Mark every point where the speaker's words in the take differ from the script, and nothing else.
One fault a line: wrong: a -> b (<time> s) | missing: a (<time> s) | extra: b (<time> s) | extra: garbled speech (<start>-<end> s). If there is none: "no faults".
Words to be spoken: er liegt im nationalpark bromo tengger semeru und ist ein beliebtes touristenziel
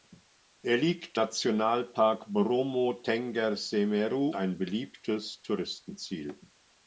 missing: im (1.2 s)
missing: und ist (4.3 s)